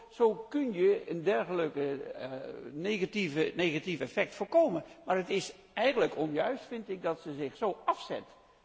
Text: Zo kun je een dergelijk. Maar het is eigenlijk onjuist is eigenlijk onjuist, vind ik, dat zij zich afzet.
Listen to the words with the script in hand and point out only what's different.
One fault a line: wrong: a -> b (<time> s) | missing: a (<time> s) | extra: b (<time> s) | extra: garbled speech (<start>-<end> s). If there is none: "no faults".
wrong: Maar het is eigenlijk onjuist -> negatief effect voorkomen Maar het (3.5 s)
extra: zo (7.5 s)